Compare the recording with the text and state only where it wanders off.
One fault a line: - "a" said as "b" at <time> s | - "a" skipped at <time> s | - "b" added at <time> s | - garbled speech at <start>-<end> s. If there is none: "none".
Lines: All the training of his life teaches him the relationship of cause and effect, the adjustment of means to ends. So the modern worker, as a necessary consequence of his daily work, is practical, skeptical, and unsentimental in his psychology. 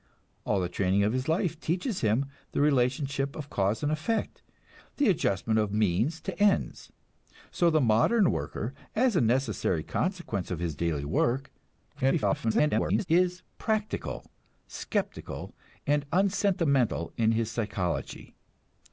- garbled speech at 11.9-13.1 s